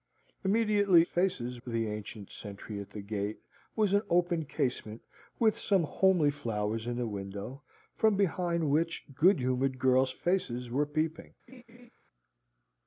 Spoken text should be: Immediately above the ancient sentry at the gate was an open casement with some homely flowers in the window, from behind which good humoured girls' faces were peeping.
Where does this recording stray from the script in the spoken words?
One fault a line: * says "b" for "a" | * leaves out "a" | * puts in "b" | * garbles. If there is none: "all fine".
* says "faces" for "above"